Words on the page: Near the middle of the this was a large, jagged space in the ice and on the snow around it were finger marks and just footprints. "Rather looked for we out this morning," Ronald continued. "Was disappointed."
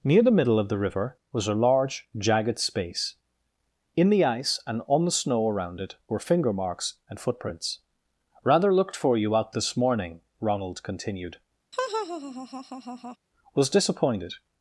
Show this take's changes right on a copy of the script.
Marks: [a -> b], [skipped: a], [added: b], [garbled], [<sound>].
Near the middle of the [this -> river] was a large, jagged space in the ice and on the snow around it were finger marks and [skipped: just] footprints. "Rather looked for [we -> you] out this morning," Ronald continued. [laugh] "Was disappointed."